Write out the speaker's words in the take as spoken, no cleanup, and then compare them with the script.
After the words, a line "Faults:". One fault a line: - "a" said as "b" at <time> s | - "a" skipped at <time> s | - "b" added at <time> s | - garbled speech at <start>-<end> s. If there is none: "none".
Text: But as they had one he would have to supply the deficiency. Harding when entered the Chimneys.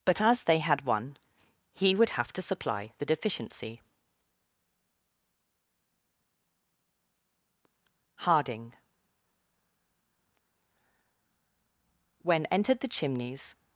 But as they had one he would have to supply the deficiency. Harding when entered the Chimneys.
Faults:
none